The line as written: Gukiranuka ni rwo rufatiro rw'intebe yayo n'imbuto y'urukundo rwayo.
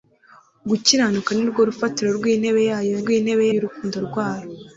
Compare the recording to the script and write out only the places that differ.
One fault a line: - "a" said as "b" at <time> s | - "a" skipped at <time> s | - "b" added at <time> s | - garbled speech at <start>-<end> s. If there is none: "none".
- "n'imbuto" said as "rw'intebe" at 3.0 s